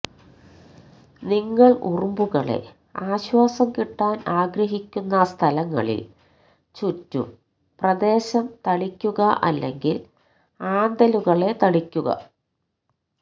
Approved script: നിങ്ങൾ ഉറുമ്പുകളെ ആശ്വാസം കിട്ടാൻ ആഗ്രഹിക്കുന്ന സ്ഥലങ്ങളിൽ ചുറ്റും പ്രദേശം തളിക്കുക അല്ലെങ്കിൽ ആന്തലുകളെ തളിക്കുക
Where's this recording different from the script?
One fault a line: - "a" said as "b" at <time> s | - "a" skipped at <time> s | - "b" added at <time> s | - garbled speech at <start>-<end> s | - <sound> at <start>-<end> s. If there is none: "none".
none